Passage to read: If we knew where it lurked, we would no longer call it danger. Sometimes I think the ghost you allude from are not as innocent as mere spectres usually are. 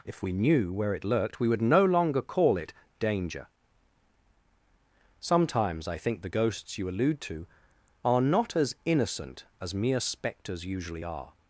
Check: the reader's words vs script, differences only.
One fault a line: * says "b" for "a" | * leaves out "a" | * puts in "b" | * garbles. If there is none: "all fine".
* says "ghosts" for "ghost"
* says "to" for "from"